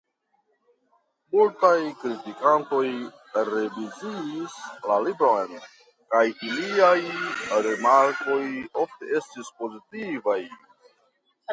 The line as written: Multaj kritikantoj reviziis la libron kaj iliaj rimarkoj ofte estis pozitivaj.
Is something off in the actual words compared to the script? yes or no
no